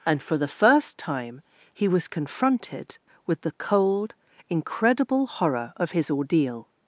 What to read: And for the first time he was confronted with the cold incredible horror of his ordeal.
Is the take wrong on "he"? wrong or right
right